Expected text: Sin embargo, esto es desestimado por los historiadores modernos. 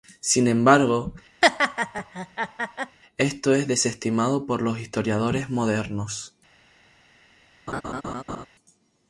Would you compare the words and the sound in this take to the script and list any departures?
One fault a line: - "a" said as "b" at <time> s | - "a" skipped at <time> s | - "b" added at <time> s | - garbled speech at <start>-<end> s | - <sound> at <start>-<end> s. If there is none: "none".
- laugh at 1.4-3.0 s
- laugh at 7.7-8.5 s